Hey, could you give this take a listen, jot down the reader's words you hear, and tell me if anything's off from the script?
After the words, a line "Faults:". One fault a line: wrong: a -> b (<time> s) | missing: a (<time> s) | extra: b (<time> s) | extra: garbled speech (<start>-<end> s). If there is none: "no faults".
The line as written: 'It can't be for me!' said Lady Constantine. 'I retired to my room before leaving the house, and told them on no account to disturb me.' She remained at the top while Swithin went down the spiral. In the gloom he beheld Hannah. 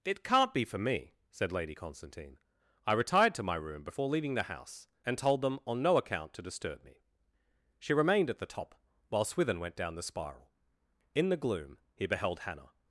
'It can't be for me!' said Lady Constantine. 'I retired to my room before leaving the house, and told them on no account to disturb me.' She remained at the top while Swithin went down the spiral. In the gloom he beheld Hannah.
Faults:
no faults